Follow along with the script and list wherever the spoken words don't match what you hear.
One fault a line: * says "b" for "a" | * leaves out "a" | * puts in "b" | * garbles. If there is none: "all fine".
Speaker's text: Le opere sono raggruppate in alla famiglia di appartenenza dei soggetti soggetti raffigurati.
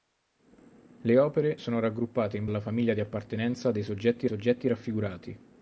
all fine